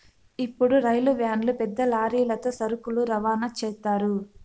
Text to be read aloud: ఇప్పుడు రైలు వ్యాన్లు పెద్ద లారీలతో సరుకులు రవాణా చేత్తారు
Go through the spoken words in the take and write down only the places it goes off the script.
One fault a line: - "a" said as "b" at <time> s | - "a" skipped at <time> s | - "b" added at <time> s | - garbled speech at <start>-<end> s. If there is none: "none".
none